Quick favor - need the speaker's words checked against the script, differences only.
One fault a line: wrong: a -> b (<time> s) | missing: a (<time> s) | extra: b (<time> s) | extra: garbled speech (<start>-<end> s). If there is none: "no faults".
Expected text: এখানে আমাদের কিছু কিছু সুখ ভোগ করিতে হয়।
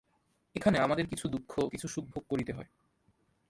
extra: দুঃখ (1.3 s)